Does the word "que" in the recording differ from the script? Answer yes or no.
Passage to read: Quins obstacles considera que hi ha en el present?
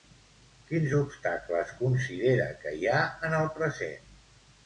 no